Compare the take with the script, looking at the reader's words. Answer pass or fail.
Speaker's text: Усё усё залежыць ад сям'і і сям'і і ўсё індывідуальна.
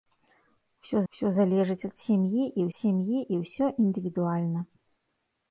pass